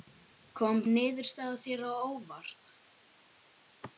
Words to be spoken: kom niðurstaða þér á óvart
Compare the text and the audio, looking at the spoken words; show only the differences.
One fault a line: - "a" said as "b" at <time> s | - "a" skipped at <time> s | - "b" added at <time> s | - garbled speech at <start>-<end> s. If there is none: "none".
none